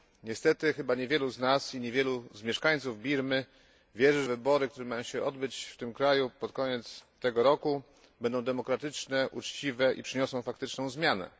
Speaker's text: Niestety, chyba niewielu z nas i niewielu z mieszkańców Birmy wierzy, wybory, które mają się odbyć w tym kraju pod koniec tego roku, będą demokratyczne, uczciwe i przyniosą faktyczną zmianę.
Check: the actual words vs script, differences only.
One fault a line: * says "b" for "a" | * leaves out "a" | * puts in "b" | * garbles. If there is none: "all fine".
all fine